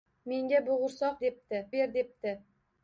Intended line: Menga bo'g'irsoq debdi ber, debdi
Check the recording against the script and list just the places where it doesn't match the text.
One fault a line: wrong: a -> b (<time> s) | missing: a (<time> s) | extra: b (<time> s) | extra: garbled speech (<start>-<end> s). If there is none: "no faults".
no faults